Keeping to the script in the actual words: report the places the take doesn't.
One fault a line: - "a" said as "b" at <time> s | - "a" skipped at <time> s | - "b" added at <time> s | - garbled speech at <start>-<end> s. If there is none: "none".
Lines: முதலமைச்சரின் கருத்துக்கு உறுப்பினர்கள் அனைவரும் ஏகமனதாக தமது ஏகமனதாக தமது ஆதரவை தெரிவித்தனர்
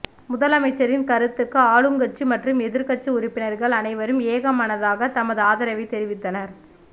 - "ஆளுங்கட்சி மற்றும் எதிர்க்கட்சி" added at 1.7 s
- "ஏகமனதாக தமது" skipped at 5.4 s